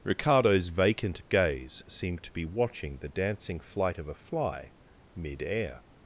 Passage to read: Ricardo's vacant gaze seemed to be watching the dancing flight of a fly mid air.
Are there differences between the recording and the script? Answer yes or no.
no